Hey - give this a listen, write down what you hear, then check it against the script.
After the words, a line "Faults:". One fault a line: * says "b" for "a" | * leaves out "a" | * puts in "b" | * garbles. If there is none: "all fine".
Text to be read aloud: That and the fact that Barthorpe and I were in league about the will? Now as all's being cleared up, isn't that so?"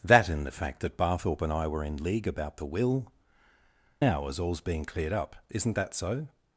That and the fact that Barthorpe and I were in league about the will? Now as all's being cleared up, isn't that so?"
Faults:
all fine